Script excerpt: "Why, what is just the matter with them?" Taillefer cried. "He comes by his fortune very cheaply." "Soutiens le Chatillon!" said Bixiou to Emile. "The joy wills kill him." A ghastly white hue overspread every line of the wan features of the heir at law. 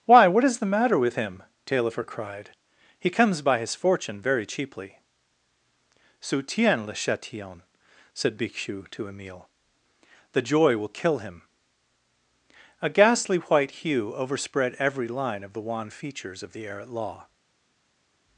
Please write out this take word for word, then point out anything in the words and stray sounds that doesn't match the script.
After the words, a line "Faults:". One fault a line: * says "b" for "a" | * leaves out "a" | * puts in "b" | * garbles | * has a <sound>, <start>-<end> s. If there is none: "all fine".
"Why, what is the matter with him?" Taillefer cried. "He comes by his fortune very cheaply." "Soutiens le Chatillon!" said Bixiou to Emile. "The joy will kill him." A ghastly white hue overspread every line of the wan features of the heir at law.
Faults:
* leaves out "just"
* says "him" for "them"
* says "will" for "wills"